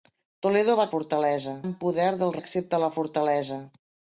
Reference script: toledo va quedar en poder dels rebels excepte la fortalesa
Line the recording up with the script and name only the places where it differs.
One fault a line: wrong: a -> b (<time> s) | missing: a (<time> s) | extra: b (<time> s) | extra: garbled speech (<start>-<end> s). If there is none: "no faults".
wrong: quedar -> fortalesa (0.9 s)
missing: rebels (2.4 s)